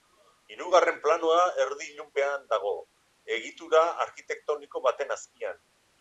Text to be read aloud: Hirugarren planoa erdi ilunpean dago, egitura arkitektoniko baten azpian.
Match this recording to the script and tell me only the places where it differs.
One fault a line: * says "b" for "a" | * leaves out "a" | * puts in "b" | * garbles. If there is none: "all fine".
all fine